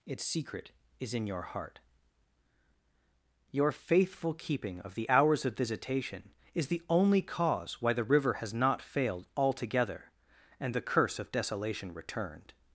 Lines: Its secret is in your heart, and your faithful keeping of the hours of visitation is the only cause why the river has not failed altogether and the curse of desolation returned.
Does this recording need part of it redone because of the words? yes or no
yes